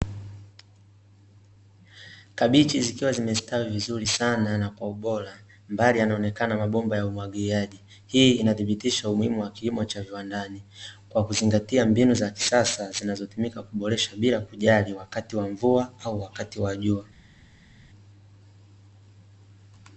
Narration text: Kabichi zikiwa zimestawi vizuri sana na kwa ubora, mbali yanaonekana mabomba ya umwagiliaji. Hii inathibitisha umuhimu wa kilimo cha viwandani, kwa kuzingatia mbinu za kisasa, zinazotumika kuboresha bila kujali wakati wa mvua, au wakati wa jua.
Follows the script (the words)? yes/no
yes